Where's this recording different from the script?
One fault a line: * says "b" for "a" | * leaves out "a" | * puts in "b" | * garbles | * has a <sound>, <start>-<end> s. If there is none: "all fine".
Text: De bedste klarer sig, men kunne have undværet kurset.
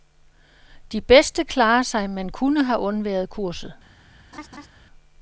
* has a laugh, 4.3-4.7 s